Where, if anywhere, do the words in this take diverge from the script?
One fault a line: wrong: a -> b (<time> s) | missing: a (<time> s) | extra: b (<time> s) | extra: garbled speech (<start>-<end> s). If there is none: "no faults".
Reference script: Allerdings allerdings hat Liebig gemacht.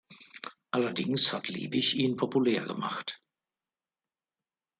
missing: allerdings (1.3 s)
extra: ihn populär (1.9 s)